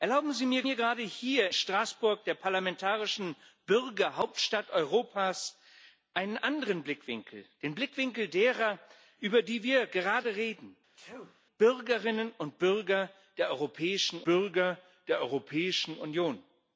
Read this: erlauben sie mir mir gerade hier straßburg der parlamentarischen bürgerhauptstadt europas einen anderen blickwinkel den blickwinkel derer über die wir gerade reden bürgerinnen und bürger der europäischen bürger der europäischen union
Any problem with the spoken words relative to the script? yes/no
no